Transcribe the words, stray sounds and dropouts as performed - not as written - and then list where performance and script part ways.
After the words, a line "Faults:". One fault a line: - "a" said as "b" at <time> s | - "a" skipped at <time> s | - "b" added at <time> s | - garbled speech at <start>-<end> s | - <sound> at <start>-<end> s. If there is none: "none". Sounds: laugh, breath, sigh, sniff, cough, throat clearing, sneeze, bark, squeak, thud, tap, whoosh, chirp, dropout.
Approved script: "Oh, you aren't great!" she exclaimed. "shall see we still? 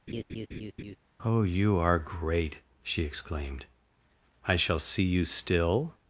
"Oh, you are great!" she exclaimed. "I shall see you still?
Faults:
- laugh at 0.1-1.0 s
- "aren't" said as "are" at 1.8 s
- "I" added at 4.5 s
- "we" said as "you" at 5.0 s